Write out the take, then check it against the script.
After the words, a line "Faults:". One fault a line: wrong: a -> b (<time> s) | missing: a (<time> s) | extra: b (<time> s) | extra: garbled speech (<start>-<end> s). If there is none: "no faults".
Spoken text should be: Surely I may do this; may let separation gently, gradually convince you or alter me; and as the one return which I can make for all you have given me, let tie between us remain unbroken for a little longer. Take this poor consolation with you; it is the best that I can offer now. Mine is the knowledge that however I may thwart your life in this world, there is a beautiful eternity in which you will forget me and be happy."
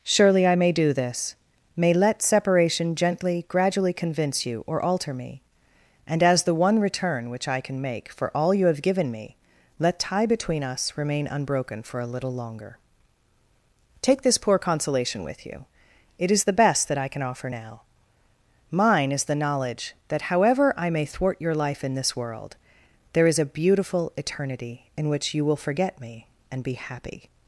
Surely I may do this; may let separation gently, gradually convince you or alter me; and as the one return which I can make for all you have given me, let tie between us remain unbroken for a little longer. Take this poor consolation with you; it is the best that I can offer now. Mine is the knowledge that however I may thwart your life in this world, there is a beautiful eternity in which you will forget me and be happy."
Faults:
no faults